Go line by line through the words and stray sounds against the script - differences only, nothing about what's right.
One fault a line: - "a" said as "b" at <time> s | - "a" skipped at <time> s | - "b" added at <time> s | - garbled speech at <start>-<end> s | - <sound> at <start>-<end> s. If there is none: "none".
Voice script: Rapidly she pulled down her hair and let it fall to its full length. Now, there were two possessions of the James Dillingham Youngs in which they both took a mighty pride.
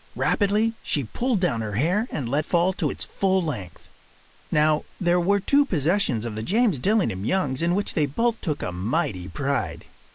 - "it" skipped at 2.4 s